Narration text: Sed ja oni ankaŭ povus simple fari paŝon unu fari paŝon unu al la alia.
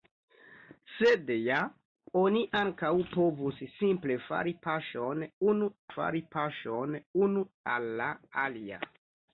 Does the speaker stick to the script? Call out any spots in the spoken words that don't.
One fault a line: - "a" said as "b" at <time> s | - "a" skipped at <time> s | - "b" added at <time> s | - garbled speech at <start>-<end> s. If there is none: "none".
none